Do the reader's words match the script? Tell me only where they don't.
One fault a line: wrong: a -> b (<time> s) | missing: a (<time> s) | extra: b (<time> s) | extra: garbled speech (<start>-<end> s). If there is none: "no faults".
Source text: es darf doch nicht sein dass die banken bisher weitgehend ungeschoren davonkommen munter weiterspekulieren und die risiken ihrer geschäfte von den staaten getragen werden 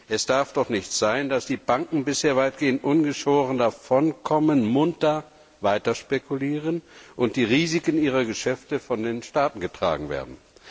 no faults